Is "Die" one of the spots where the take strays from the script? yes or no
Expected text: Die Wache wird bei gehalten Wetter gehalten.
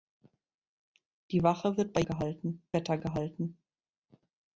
no